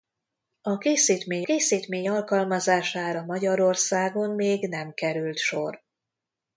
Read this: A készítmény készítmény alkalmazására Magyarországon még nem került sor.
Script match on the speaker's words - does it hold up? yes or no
yes